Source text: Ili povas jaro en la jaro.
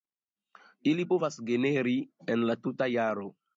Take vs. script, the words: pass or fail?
fail